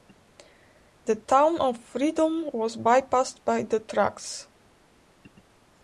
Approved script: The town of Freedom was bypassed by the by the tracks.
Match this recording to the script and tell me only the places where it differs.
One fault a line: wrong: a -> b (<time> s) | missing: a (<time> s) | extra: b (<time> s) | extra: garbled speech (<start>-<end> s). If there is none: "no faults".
missing: by the (3.8 s)